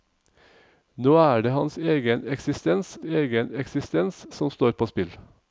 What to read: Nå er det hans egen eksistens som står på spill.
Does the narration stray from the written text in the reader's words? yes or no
yes